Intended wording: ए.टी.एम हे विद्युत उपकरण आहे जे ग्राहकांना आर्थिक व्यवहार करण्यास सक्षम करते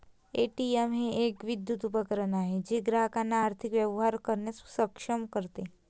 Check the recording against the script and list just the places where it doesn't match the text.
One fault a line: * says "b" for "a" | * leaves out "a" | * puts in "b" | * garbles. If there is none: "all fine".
* puts in "एक"